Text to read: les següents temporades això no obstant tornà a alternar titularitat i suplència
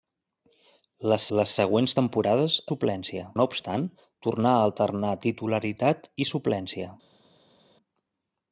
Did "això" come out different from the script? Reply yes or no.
yes